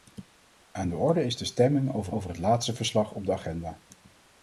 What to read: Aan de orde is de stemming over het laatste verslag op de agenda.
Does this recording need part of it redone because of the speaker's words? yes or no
yes